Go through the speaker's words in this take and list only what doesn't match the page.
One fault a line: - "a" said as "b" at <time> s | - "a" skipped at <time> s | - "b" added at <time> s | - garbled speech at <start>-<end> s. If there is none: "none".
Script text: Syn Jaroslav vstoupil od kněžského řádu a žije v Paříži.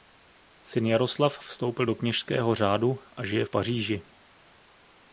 - "od" said as "do" at 1.8 s